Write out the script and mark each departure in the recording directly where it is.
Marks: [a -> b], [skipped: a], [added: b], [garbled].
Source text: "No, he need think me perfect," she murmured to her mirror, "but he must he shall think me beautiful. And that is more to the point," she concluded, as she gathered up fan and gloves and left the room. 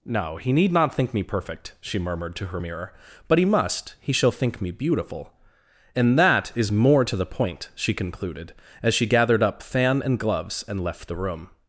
"No, he need [added: not] think me perfect," she murmured to her mirror, "but he must he shall think me beautiful. And that is more to the point," she concluded, as she gathered up fan and gloves and left the room.